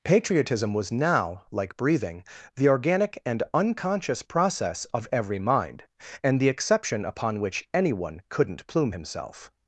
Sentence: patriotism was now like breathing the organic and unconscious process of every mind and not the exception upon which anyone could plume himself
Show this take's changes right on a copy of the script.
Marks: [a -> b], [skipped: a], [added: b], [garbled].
patriotism was now like breathing the organic and unconscious process of every mind and [skipped: not] the exception upon which anyone [could -> couldn't] plume himself